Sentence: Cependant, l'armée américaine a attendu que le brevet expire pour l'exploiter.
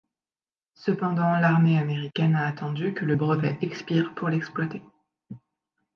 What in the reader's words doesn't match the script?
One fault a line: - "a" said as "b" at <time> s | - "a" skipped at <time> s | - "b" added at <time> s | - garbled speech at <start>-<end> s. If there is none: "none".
none